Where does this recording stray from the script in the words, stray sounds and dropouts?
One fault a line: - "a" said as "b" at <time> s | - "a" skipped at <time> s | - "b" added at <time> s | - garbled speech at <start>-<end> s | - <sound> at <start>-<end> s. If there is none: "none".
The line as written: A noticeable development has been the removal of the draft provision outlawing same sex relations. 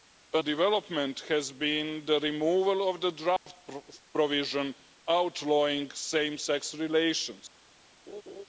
- "noticeable" skipped at 0.4 s
- dropout at 3.4-3.5 s
- laugh at 8.1-8.5 s